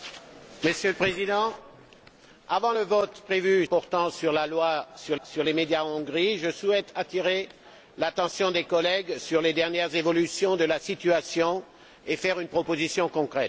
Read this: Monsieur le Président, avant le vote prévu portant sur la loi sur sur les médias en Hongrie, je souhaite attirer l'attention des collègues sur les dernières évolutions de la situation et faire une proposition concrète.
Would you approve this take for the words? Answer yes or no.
yes